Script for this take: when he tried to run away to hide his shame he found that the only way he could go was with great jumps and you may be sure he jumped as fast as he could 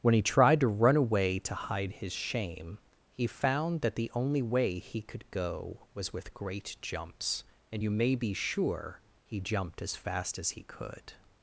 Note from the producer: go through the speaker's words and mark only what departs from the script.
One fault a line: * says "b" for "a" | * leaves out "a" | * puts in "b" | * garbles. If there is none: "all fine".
all fine